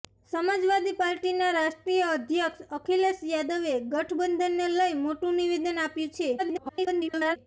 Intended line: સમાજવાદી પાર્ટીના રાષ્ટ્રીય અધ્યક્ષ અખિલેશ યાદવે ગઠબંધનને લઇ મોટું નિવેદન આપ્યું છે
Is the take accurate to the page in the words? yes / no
no